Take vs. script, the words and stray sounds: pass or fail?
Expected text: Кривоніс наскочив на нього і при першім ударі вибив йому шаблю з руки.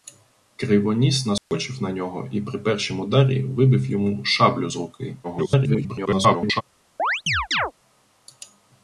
fail